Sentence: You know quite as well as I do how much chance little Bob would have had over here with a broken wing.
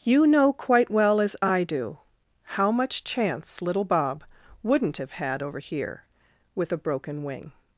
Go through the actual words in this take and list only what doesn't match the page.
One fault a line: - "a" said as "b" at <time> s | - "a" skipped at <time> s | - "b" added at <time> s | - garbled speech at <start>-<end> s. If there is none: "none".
- "as" skipped at 0.9 s
- "would" said as "wouldn't" at 4.6 s